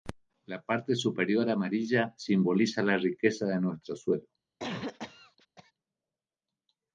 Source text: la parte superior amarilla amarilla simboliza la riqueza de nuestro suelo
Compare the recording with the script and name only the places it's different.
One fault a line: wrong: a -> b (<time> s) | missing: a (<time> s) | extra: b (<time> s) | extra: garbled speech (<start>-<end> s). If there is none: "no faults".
missing: amarilla (2.1 s)